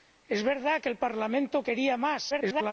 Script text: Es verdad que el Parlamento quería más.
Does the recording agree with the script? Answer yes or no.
no